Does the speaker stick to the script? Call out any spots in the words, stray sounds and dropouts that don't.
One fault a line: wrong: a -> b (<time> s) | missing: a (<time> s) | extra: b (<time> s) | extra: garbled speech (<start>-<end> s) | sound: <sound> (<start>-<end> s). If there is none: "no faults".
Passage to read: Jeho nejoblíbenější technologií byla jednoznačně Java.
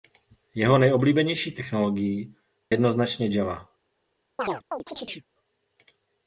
missing: byla (2.4 s)
sound: chirp (4.4-5.3 s)